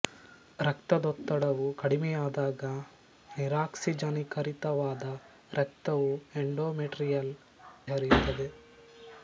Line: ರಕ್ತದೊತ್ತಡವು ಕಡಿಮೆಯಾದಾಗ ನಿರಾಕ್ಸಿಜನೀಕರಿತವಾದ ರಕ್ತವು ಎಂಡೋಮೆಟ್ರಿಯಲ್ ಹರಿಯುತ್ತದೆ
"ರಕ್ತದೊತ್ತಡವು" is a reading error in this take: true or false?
false